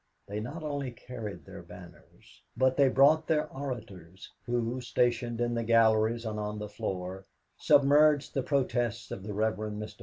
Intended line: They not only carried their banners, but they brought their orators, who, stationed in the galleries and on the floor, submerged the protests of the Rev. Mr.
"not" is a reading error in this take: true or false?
false